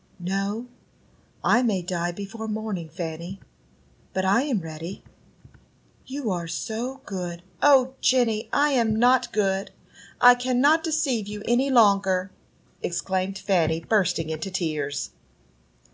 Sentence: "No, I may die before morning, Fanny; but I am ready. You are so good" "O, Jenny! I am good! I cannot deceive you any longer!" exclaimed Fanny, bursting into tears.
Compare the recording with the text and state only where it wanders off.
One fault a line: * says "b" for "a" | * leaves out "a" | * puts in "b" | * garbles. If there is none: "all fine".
* puts in "not"